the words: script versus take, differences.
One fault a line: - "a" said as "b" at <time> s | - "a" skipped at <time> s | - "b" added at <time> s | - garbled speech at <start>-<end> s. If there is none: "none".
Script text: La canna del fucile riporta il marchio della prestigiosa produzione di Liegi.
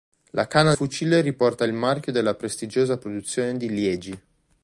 - "del" skipped at 0.7 s